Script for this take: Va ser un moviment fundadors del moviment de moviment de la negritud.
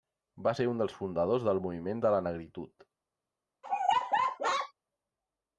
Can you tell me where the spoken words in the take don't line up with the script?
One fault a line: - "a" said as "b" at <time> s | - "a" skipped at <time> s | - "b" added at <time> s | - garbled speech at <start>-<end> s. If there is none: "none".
- "moviment" said as "dels" at 0.8 s
- "moviment de" skipped at 2.1 s